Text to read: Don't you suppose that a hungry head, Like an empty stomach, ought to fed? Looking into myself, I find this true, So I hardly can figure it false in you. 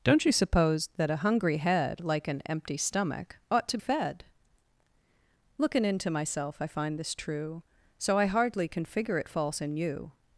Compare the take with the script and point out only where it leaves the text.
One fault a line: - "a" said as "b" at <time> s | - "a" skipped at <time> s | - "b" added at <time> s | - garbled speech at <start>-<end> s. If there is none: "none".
none